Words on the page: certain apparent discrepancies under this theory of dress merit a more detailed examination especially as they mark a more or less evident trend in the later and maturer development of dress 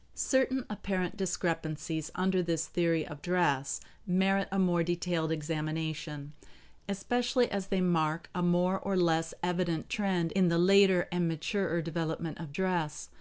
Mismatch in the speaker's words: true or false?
false